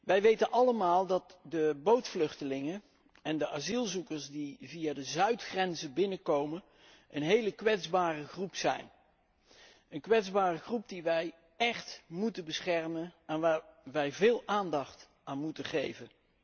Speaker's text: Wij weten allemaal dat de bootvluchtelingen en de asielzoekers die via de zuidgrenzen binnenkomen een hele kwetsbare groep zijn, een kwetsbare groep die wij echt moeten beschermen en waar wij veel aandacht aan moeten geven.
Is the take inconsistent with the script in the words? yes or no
no